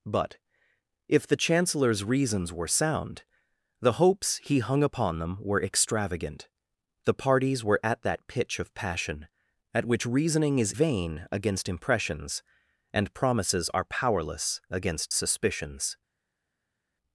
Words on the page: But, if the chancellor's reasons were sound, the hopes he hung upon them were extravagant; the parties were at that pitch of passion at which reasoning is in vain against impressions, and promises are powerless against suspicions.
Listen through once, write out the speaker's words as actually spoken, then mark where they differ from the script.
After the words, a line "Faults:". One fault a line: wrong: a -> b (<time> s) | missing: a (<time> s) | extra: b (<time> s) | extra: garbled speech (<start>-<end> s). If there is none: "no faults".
But, if the chancellor's reasons were sound, the hopes he hung upon them were extravagant; the parties were at that pitch of passion at which reasoning is vain against impressions, and promises are powerless against suspicions.
Faults:
missing: in (10.7 s)